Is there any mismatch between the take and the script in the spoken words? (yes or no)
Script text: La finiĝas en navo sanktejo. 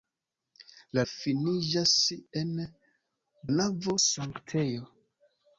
no